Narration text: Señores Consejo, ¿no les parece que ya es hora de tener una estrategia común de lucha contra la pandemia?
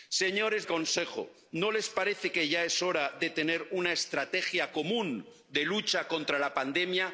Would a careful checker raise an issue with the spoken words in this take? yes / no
no